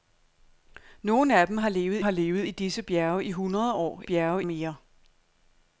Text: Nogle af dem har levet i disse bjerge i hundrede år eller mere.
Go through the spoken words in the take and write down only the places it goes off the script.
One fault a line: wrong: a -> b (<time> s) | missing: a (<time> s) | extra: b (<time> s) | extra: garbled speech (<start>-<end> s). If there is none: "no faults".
extra: har levet (2.0 s)
wrong: eller -> bjerge (4.0 s)